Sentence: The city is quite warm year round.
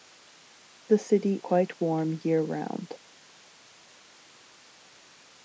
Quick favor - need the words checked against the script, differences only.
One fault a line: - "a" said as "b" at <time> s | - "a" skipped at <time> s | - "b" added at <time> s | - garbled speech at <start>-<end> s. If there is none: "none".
- "is" skipped at 1.4 s